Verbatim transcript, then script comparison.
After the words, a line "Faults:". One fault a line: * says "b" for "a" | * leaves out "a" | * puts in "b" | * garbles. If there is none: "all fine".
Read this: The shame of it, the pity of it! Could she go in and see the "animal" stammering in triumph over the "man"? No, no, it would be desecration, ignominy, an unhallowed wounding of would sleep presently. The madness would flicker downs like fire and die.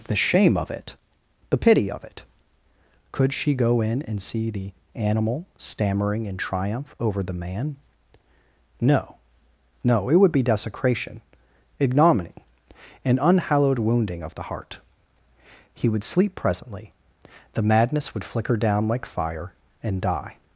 The shame of it, the pity of it! Could she go in and see the "animal" stammering in triumph over the "man"? No, no, it would be desecration, ignominy, an unhallowed wounding of the heart. He would sleep presently. The madness would flicker down like fire and die.
Faults:
* puts in "the heart He"
* says "down" for "downs"